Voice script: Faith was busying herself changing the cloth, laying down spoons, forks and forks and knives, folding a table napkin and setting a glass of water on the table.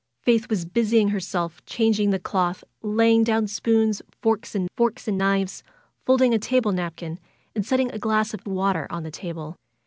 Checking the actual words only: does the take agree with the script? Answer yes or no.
yes